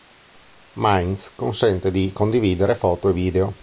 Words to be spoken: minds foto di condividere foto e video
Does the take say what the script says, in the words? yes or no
no